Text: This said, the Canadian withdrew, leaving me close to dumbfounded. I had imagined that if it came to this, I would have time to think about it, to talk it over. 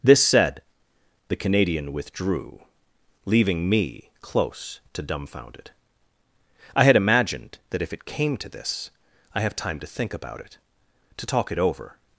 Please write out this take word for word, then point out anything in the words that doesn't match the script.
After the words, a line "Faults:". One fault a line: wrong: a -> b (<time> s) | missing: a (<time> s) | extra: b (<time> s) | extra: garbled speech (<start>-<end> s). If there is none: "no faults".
This said, the Canadian withdrew, leaving me close to dumbfounded. I had imagined that if it came to this, I have time to think about it, to talk it over.
Faults:
missing: would (9.4 s)